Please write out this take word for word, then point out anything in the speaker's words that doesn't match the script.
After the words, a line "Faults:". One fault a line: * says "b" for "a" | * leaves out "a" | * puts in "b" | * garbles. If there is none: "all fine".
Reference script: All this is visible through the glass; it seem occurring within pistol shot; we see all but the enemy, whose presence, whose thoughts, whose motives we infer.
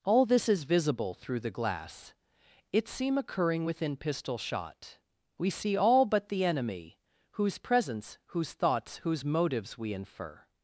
All this is visible through the glass; it seem occurring within pistol shot; we see all but the enemy, whose presence, whose thoughts, whose motives we infer.
Faults:
all fine